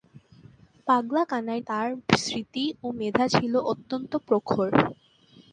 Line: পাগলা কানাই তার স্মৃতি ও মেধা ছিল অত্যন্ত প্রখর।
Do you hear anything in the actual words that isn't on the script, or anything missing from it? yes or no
no